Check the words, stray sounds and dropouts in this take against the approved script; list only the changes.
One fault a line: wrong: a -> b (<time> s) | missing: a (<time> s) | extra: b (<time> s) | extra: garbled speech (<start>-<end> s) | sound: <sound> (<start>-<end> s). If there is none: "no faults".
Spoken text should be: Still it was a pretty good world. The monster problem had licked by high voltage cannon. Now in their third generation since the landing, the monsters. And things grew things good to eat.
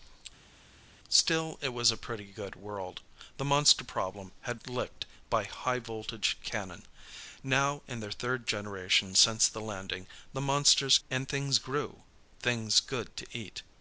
no faults